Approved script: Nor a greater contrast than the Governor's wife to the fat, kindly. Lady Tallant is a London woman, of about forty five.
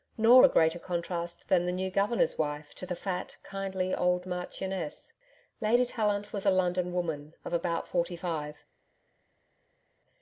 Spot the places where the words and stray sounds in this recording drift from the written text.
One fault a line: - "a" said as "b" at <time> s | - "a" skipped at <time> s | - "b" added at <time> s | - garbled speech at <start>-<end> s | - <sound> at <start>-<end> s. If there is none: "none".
- "new" added at 1.7 s
- "old marchioness" added at 3.9 s
- "is" said as "was" at 6.3 s